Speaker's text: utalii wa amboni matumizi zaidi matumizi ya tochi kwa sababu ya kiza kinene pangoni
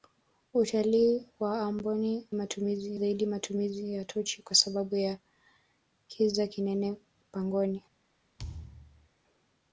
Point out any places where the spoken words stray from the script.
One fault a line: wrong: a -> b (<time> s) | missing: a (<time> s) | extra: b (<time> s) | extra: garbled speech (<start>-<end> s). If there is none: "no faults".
no faults